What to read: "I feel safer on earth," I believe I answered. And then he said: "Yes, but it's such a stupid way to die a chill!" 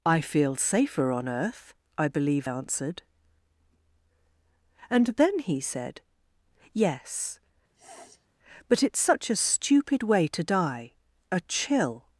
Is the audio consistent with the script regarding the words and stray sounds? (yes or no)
no